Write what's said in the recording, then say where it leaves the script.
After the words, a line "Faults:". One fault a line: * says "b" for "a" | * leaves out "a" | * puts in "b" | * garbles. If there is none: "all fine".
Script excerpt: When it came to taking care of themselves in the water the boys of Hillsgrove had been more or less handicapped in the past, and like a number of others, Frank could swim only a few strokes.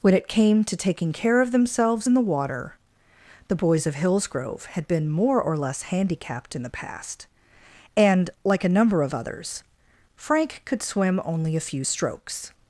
When it came to taking care of themselves in the water the boys of Hillsgrove had been more or less handicapped in the past, and like a number of others, Frank could swim only a few strokes.
Faults:
all fine